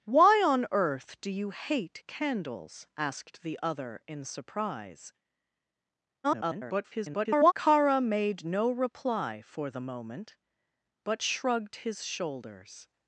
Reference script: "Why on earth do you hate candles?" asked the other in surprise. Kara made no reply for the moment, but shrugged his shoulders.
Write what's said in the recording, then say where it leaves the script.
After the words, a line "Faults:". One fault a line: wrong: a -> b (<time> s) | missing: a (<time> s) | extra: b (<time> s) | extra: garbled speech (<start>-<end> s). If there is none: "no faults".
"Why on earth do you hate candles?" asked the other in surprise. [garbled] Kara made no reply for the moment, but shrugged his shoulders.
Faults:
extra: garbled speech (6.2-7.5 s)